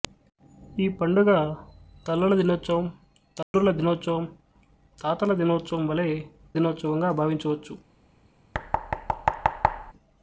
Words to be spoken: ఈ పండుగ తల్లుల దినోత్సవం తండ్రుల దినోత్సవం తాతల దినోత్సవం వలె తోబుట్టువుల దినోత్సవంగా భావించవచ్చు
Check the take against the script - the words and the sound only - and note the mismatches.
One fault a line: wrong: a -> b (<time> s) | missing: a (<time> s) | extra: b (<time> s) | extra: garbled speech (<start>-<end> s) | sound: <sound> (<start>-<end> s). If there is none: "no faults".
sound: dropout (3.4-3.5 s)
missing: తోబుట్టువుల (6.1 s)
sound: thud (8.5-9.9 s)